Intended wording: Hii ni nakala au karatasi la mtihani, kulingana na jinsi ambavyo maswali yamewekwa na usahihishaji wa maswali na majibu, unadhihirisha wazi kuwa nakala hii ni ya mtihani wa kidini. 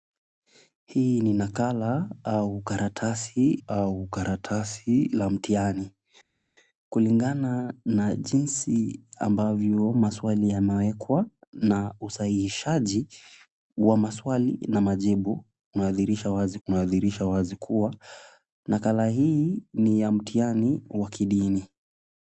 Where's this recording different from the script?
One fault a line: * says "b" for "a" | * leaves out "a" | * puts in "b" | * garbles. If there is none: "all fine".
* puts in "au karatasi"
* puts in "unadhihirisha wazi"